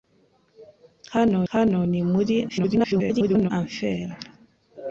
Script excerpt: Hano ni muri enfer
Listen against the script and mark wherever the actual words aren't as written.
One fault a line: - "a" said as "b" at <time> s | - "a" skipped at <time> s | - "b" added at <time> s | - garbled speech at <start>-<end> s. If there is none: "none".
- "hano" added at 1.5 s
- garbled speech at 2.5-3.5 s